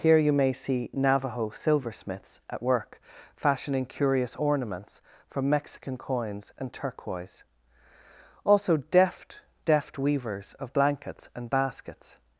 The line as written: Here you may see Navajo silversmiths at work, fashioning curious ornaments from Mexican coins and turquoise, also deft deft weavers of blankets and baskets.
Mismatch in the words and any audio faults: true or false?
false